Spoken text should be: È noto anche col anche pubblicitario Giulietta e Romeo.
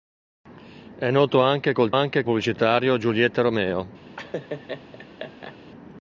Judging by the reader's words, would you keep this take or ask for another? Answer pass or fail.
pass